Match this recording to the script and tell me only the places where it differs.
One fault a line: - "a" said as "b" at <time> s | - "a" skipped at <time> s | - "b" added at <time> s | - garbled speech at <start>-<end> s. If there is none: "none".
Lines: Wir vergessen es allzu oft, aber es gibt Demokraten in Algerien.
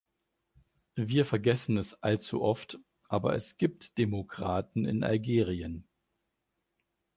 none